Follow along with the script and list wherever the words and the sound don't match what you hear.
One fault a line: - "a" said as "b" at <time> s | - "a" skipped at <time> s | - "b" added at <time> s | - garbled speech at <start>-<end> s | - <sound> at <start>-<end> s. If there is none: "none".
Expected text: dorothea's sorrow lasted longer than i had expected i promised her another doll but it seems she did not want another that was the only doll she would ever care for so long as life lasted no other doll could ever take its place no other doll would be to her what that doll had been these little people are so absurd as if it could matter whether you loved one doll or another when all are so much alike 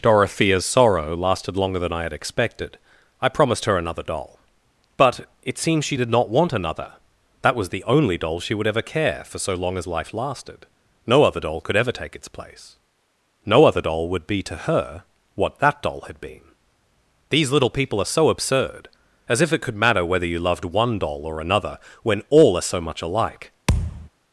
- thud at 23.7-24.1 s